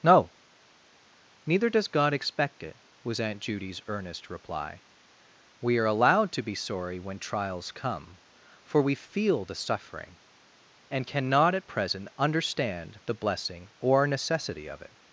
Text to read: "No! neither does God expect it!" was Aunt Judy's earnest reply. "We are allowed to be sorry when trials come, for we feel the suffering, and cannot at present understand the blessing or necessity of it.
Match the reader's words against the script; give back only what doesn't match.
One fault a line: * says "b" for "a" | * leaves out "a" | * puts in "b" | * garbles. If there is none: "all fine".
all fine